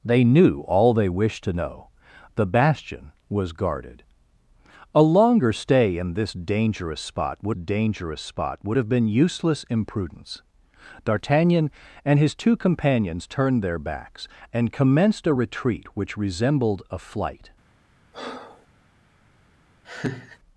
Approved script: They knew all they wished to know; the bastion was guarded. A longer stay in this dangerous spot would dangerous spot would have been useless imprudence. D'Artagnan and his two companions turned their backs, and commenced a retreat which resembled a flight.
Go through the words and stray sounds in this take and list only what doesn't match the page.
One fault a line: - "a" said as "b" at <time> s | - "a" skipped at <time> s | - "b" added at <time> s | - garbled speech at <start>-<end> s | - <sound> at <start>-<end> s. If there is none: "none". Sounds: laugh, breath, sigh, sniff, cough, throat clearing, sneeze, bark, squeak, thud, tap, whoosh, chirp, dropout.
- breath at 18.1-18.7 s
- laugh at 19.8-20.4 s